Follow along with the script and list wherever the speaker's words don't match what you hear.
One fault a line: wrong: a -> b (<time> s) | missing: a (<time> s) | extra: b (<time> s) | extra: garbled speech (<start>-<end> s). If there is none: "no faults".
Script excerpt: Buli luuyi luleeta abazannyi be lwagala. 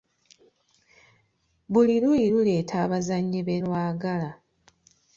no faults